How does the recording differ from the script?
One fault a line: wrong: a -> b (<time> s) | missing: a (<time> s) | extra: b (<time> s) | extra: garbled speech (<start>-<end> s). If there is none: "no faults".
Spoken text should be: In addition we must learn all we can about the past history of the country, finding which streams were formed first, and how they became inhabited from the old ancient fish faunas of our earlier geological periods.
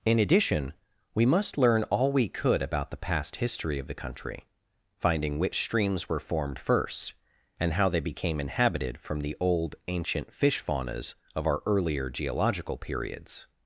wrong: can -> could (2.3 s)